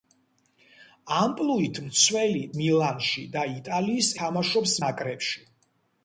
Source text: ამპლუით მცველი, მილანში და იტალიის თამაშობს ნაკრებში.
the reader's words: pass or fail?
pass